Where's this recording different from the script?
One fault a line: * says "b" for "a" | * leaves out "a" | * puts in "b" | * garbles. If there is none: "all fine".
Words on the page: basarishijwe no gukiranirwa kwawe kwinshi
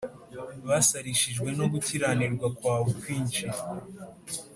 all fine